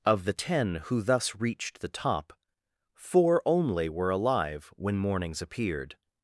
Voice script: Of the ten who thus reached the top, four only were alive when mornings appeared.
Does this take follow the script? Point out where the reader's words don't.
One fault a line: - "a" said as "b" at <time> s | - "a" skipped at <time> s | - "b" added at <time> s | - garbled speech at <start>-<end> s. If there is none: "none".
none